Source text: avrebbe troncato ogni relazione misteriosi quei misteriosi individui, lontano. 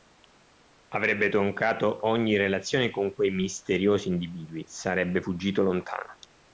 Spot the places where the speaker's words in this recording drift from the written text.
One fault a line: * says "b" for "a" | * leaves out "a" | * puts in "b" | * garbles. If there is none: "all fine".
* says "con" for "misteriosi"
* puts in "sarebbe fuggito"